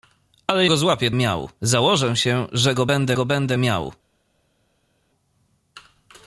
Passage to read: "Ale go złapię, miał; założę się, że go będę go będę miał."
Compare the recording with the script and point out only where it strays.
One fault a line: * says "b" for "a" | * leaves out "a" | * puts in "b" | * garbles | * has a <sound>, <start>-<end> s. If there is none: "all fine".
all fine